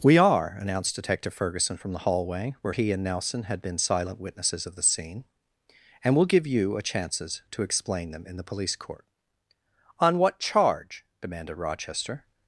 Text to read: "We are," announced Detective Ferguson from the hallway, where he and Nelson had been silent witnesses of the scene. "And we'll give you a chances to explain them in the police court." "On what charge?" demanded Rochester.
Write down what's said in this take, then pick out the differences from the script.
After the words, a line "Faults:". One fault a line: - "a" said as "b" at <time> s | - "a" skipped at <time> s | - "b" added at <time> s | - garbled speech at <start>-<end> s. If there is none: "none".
"We are," announced Detective Ferguson from the hallway, where he and Nelson had been silent witnesses of the scene. "And we'll give you a chances to explain them in the police court." "On what charge?" demanded Rochester.
Faults:
none